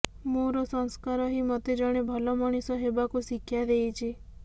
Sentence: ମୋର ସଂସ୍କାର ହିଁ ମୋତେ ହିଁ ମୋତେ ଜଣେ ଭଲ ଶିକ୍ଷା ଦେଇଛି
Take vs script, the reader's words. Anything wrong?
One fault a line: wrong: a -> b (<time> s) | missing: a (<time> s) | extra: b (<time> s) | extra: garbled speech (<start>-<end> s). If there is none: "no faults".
wrong: ହିଁ ମୋତେ ଜଣେ ଭଲ -> ଜଣେ ଭଲ ମଣିଷ ହେବାକୁ (1.8 s)